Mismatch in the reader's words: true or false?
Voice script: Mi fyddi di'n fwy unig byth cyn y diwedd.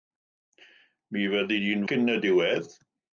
true